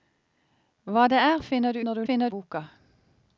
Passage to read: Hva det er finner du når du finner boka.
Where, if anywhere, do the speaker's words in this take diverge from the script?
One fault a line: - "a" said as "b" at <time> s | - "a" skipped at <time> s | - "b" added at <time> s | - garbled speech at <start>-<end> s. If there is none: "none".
none